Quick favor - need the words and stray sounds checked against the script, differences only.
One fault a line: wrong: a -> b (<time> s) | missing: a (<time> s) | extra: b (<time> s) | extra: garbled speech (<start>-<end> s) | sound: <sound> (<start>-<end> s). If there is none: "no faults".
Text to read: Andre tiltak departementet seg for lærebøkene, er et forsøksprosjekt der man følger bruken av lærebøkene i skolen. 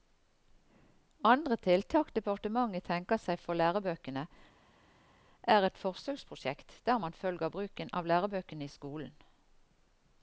extra: tenker (2.9 s)